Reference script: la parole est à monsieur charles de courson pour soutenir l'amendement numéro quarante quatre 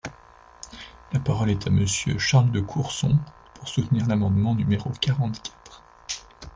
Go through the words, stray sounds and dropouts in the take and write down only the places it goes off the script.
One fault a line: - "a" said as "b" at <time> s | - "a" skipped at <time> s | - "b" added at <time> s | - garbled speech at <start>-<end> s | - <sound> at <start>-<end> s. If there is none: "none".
none